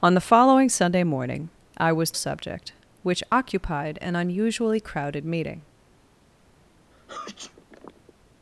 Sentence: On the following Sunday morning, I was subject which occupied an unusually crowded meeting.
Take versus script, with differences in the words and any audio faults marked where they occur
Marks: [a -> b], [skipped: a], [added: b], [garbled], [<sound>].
On the following Sunday morning, I was subject which occupied an unusually crowded meeting. [sneeze]